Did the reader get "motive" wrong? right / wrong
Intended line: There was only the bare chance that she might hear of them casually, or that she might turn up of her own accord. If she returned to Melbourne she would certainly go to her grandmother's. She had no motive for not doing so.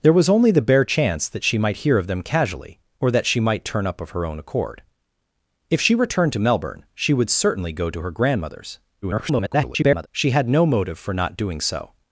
right